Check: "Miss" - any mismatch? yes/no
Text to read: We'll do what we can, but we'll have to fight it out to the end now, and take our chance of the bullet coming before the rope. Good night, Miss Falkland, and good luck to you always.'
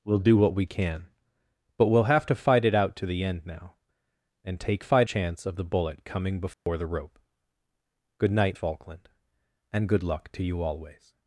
yes